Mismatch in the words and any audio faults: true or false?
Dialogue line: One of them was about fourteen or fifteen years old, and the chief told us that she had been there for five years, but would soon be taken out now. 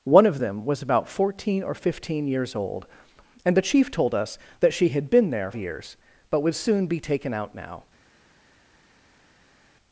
true